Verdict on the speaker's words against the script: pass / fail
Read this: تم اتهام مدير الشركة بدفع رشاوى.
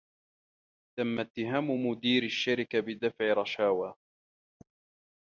pass